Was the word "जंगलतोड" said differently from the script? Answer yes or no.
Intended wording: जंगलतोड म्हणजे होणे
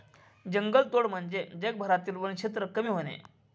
no